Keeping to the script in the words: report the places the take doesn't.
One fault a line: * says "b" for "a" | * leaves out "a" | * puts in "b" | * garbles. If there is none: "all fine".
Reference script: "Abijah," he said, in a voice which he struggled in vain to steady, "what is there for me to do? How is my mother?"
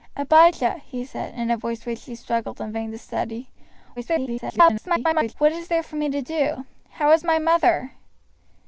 * garbles